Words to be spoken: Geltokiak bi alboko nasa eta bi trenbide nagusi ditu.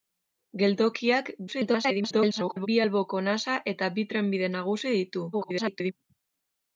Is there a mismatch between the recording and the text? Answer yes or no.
yes